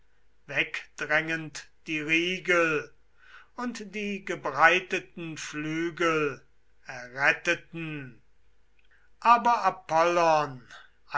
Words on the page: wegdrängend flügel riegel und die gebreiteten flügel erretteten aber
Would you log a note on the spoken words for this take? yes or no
yes